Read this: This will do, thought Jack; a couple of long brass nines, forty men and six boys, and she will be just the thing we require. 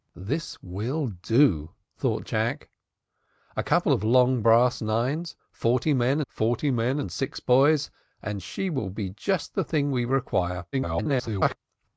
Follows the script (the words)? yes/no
no